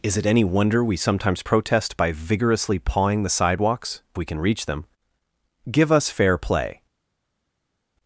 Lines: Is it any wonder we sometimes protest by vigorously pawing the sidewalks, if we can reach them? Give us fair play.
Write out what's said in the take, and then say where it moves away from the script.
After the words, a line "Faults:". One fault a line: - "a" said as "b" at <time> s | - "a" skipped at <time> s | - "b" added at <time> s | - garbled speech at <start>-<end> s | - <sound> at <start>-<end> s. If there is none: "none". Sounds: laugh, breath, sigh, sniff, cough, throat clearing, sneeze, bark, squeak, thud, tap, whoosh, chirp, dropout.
Is it any wonder we sometimes protest by vigorously pawing the sidewalks, we can reach them? Give us fair play.
Faults:
- "if" skipped at 4.0 s